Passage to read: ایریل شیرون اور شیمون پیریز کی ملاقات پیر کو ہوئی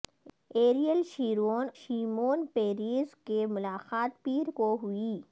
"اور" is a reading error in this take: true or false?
true